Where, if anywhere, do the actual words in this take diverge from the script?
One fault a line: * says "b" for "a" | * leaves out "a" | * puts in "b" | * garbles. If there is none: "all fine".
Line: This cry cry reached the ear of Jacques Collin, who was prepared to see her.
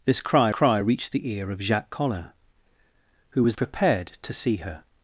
all fine